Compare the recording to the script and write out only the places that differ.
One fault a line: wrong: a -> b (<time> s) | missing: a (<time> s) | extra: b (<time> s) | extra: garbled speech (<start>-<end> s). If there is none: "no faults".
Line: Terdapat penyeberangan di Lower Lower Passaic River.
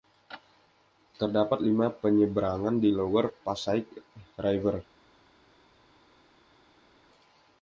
extra: lima (1.6 s)
missing: Lower (3.3 s)